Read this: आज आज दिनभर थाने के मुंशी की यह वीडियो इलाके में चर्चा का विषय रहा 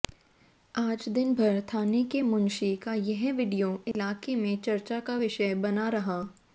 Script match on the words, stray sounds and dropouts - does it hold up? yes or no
no